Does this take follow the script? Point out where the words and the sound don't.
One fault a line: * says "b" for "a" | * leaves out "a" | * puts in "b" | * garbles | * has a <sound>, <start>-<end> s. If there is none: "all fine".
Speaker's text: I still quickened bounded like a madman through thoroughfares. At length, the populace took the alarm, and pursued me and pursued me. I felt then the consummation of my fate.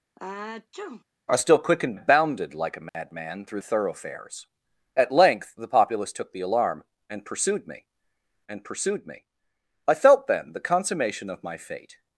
* has a sneeze, 0.2-1.0 s
* has a dropout, 2.9-2.9 s